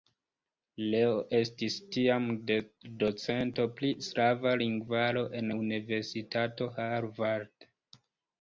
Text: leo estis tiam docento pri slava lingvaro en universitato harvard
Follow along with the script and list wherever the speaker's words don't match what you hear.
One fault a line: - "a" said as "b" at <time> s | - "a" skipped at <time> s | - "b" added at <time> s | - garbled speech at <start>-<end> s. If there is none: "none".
none